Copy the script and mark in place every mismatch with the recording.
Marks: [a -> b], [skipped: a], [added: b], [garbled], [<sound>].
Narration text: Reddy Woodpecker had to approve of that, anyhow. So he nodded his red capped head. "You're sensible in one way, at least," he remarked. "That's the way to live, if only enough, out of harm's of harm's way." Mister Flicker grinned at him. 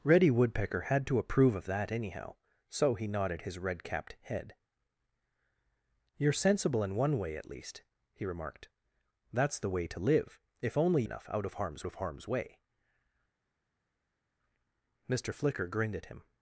Reddy Woodpecker had to approve of that, anyhow. So he nodded his red capped head. "You're sensible in one way, at least," he remarked. "That's the way to live, if only enough, out of harm's of harm's way." Mister Flicker grinned at him.